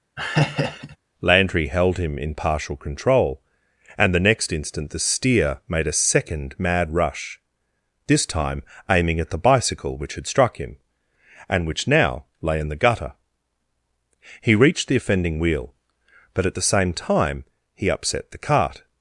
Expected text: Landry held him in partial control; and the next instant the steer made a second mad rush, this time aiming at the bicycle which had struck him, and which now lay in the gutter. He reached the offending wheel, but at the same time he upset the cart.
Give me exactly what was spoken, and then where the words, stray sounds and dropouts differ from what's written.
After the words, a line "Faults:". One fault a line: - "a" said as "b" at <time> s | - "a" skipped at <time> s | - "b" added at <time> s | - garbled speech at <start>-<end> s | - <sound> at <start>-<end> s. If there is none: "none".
Landry held him in partial control; and the next instant the steer made a second mad rush, this time aiming at the bicycle which had struck him, and which now lay in the gutter. He reached the offending wheel, but at the same time he upset the cart.
Faults:
- laugh at 0.2-1.0 s